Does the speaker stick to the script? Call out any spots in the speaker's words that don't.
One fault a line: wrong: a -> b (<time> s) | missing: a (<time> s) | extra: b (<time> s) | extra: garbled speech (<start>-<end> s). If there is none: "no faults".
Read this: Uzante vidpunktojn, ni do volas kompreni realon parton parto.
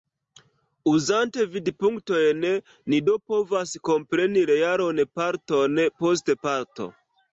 wrong: volas -> povas (3.3 s)
extra: post (6.0 s)